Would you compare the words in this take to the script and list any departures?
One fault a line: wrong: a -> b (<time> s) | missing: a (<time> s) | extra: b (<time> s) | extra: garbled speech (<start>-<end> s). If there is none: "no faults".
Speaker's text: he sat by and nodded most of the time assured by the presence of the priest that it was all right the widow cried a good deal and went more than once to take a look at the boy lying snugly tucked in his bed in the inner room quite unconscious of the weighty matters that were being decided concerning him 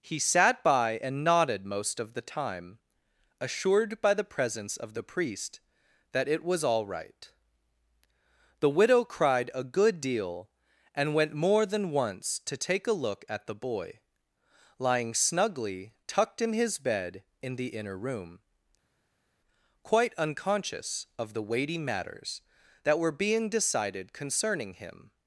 no faults